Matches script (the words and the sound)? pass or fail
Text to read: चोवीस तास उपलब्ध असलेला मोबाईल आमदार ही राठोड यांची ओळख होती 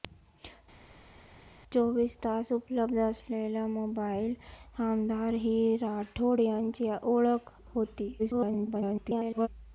fail